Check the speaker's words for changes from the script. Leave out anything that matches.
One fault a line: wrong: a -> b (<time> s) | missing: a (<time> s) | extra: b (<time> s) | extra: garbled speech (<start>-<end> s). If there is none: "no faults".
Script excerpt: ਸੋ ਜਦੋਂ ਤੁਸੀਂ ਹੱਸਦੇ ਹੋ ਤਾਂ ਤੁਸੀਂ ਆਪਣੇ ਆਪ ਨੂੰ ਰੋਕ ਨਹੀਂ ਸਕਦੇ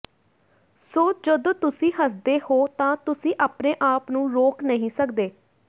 no faults